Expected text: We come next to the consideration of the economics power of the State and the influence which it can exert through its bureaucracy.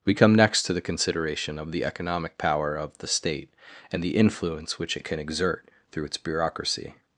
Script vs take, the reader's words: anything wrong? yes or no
yes